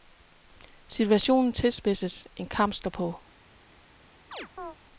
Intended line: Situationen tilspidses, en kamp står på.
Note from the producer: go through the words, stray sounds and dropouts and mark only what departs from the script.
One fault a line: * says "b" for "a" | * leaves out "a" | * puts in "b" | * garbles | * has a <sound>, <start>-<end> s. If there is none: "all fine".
* has a chirp, 4.3-4.8 s